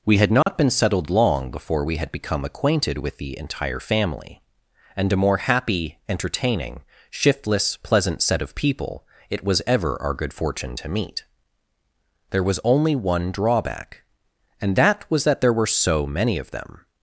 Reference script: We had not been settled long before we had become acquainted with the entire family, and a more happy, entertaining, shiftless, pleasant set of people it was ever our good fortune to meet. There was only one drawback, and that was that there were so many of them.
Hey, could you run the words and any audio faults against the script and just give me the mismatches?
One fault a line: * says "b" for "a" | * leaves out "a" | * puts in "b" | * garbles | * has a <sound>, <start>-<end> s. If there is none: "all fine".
* has a dropout, 0.4-0.5 s